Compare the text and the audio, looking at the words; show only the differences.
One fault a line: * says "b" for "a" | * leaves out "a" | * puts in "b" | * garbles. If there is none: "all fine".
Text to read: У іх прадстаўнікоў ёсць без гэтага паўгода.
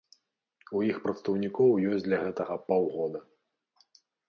* says "для" for "без"